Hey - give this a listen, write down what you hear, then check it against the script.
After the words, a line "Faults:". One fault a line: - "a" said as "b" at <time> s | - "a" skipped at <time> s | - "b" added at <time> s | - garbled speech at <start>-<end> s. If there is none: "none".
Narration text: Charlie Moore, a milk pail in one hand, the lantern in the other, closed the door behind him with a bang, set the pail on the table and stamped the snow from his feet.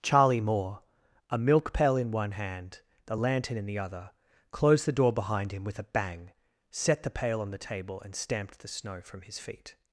Charlie Moore, a milk pail in one hand, the lantern in the other, closed the door behind him with a bang, set the pail on the table and stamped the snow from his feet.
Faults:
none